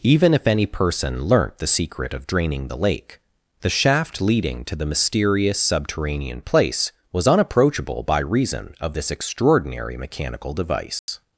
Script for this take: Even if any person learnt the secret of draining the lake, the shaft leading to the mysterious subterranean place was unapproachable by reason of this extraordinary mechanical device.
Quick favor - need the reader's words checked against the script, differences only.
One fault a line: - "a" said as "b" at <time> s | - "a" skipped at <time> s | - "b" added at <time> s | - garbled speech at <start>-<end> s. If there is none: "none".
none